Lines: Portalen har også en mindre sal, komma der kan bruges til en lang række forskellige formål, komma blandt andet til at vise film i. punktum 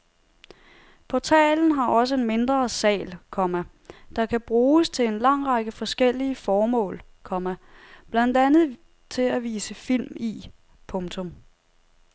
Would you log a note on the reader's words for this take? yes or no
no